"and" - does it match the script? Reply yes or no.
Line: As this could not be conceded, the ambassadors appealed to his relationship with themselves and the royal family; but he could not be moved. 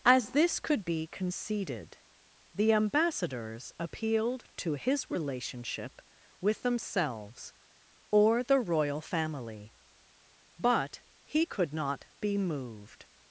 no